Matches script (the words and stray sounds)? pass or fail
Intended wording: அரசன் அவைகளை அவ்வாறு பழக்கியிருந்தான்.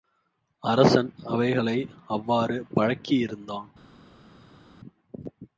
pass